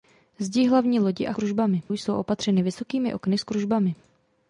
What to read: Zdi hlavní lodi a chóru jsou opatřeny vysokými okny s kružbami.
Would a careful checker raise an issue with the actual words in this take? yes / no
yes